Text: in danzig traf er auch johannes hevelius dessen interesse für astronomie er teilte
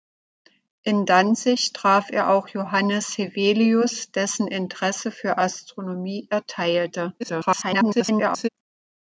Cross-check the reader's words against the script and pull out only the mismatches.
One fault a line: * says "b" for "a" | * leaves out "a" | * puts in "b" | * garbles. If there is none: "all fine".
* garbles